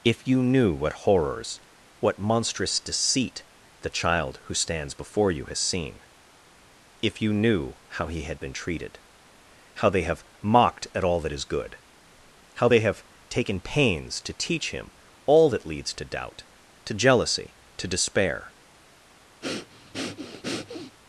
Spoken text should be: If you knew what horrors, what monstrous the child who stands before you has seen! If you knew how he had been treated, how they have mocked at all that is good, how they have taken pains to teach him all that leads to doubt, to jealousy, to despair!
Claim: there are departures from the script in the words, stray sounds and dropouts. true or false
true